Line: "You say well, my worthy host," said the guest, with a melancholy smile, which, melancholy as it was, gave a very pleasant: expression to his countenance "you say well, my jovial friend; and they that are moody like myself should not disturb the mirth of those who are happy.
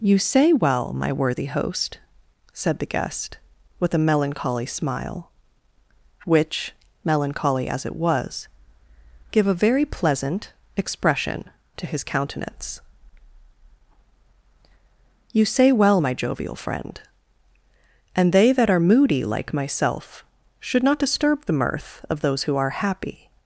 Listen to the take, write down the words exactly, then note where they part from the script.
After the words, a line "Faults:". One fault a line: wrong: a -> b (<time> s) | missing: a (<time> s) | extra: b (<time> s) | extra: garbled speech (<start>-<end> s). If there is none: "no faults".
"You say well, my worthy host," said the guest, with a melancholy smile, which, melancholy as it was, gave a very pleasant: expression to his countenance "you say well, my jovial friend; and they that are moody like myself should not disturb the mirth of those who are happy.
Faults:
no faults